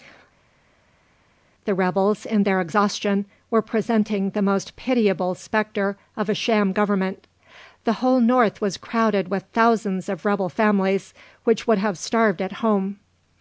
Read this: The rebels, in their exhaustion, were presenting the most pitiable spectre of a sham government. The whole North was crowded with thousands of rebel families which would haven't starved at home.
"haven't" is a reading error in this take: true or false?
true